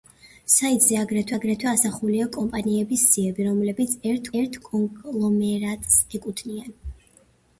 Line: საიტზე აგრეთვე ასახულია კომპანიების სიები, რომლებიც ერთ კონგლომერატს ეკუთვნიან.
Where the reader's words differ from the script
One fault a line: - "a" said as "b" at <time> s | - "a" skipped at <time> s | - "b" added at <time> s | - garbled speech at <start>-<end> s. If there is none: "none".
- "აგრეთვე" added at 1.3 s
- "ერთ" added at 4.4 s